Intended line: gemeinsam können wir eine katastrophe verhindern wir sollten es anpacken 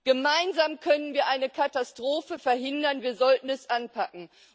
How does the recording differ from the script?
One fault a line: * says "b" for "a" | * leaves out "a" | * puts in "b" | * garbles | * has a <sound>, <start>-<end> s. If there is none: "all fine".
all fine